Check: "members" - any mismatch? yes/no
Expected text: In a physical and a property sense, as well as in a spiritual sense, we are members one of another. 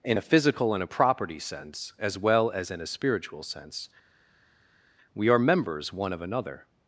no